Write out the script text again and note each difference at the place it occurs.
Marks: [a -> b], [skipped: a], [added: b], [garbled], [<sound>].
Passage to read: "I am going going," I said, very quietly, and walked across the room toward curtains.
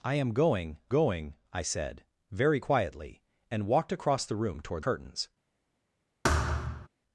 "I am going going," I said, very quietly, and walked across the room toward curtains. [thud]